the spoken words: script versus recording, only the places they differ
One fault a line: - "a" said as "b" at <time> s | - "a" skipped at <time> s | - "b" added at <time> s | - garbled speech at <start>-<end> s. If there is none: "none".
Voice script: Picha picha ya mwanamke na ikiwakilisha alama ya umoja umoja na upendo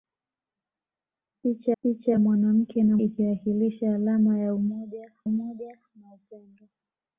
none